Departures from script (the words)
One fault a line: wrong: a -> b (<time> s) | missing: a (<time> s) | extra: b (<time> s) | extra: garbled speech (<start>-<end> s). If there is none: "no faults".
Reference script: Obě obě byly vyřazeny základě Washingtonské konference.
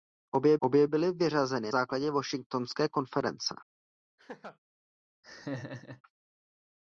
no faults